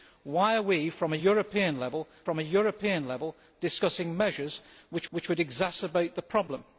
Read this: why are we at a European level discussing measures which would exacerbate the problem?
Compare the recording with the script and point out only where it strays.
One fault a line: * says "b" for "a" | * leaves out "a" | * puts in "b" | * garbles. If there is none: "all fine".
* puts in "a European level"
* puts in "which"